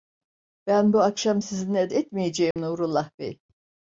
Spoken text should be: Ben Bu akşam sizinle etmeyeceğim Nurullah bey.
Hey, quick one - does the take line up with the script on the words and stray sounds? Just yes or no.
no